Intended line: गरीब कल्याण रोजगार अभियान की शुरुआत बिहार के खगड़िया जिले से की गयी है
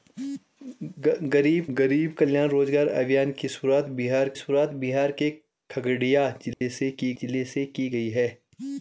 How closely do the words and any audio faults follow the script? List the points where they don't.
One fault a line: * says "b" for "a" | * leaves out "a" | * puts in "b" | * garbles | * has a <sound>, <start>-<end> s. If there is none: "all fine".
* puts in "गरीब"
* puts in "शुरुआत बिहार"
* has a dropout, 6.5-6.6 s
* puts in "जिले से की"